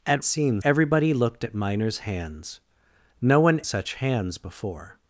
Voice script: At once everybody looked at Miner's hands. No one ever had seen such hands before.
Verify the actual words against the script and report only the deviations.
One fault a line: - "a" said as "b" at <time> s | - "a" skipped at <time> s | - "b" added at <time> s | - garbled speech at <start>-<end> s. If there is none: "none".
- "once" said as "seen" at 0.2 s
- "ever had seen" skipped at 3.6 s